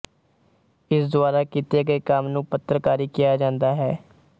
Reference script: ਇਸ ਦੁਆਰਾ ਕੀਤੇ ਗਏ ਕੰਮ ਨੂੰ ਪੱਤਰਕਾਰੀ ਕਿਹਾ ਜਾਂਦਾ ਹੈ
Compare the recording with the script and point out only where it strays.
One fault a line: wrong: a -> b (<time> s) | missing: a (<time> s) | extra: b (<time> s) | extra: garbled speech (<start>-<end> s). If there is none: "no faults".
no faults